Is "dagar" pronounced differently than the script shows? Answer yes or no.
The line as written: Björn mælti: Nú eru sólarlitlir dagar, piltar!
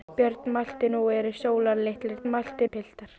yes